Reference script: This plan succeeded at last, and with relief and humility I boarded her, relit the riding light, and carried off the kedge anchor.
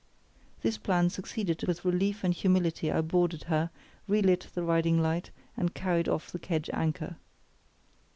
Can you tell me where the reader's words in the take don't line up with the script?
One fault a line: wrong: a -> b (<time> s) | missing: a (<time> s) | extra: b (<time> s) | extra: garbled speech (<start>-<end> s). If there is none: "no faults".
missing: at last and (1.6 s)